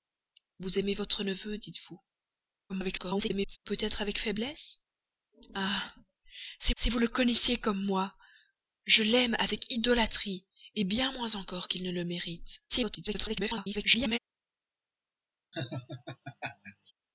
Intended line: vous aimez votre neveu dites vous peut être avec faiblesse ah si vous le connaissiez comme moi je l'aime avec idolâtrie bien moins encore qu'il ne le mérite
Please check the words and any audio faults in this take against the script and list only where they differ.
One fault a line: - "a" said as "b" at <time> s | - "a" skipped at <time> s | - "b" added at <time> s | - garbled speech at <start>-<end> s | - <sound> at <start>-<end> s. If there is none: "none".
- garbled speech at 2.7-3.6 s
- "si" added at 6.7 s
- garbled speech at 12.7-14.2 s
- laugh at 15.5-16.9 s